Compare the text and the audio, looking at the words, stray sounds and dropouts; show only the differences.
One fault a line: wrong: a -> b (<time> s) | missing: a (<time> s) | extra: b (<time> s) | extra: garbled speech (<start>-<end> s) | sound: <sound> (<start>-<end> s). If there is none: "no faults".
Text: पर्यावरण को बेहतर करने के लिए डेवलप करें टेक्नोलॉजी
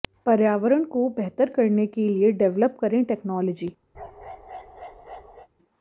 sound: bark (3.9-5.5 s)